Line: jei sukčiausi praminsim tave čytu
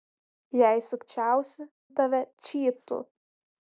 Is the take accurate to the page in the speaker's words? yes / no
no